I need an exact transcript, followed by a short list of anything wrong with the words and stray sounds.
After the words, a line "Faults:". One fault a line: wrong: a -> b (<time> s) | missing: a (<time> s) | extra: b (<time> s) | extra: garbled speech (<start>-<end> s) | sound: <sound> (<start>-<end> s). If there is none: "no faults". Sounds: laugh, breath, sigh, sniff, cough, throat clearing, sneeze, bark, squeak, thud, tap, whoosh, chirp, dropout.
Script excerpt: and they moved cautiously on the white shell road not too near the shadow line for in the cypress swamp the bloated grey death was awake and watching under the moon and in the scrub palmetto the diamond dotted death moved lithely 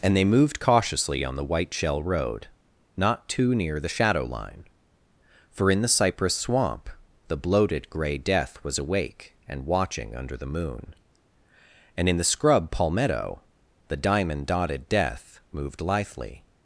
and they moved cautiously on the white shell road not too near the shadow line for in the cypress swamp the bloated grey death was awake and watching under the moon and in the scrub palmetto the diamond dotted death moved lithely
Faults:
no faults